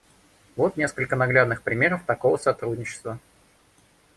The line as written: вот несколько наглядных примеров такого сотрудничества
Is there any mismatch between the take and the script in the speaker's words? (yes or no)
no